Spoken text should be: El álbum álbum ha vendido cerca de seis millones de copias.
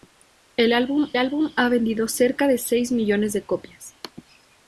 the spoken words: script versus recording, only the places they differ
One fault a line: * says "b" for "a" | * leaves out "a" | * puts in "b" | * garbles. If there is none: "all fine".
all fine